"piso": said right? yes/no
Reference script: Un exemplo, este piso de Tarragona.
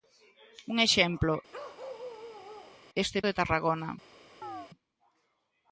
no